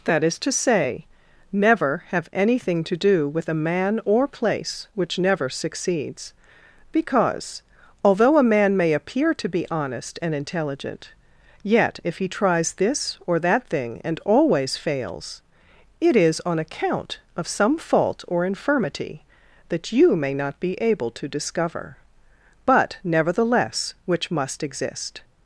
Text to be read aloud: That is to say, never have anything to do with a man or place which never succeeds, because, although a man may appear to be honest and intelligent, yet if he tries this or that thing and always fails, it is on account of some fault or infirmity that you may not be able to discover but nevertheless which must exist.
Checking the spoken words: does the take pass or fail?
pass